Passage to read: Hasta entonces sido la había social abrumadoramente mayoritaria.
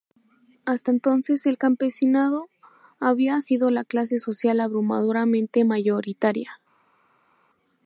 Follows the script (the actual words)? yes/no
no